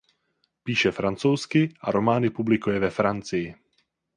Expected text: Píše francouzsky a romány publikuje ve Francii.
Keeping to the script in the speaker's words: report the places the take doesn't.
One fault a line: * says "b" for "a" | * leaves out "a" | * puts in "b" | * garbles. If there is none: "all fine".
all fine